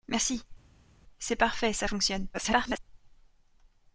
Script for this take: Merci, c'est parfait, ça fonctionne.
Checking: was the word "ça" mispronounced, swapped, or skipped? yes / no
no